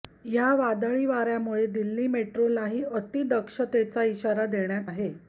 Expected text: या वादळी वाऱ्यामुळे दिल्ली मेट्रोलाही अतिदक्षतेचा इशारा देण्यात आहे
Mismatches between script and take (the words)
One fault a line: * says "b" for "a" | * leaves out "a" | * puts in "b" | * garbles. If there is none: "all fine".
all fine